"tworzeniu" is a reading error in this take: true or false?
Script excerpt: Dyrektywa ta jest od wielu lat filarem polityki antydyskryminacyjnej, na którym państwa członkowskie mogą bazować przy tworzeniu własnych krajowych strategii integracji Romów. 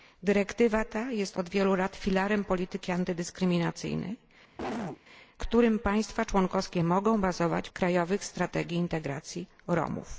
true